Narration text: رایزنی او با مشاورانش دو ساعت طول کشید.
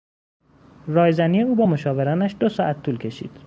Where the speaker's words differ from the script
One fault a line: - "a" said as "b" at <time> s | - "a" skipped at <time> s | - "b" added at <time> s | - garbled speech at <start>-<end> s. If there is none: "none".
none